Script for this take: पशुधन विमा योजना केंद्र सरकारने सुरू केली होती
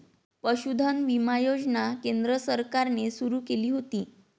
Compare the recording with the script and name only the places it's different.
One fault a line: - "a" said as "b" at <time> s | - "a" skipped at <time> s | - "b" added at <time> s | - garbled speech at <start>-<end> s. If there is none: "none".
none